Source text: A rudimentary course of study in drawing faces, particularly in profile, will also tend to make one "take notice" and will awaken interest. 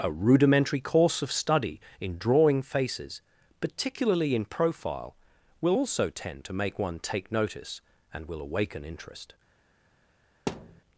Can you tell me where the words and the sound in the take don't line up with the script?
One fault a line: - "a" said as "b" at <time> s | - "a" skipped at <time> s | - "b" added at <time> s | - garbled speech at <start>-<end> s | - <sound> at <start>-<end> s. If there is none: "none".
- thud at 10.5-10.8 s